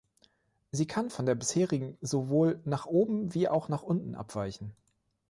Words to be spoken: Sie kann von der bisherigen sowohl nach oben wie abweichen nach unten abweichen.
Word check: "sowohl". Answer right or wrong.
right